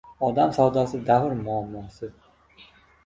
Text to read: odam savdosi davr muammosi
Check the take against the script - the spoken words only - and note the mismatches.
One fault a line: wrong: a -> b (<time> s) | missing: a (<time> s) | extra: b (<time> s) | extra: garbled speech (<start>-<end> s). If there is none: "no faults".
no faults